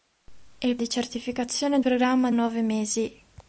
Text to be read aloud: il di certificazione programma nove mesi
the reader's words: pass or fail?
pass